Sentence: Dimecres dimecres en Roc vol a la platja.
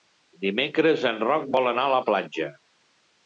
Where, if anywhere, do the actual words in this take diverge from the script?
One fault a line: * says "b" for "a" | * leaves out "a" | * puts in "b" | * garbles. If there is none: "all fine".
* leaves out "dimecres"
* puts in "anar"